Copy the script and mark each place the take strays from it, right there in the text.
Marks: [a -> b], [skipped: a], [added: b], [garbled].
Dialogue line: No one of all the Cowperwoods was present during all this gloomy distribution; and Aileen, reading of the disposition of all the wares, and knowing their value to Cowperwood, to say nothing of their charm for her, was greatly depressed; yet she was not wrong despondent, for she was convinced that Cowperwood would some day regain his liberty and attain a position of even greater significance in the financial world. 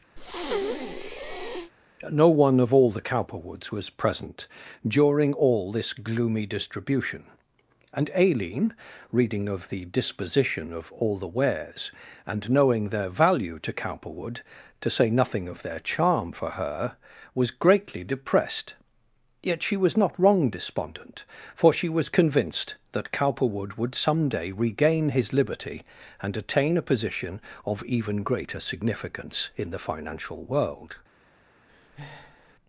No one of all the Cowperwoods was present during all this gloomy distribution; and Aileen, reading of the disposition of all the wares, and knowing their value to Cowperwood, to say nothing of their charm for her, was greatly depressed; yet she was not wrong despondent, for she was convinced that Cowperwood would some day regain his liberty and attain a position of even greater significance in the financial world.